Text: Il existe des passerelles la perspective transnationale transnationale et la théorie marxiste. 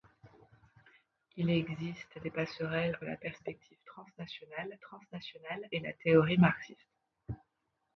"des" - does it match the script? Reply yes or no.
yes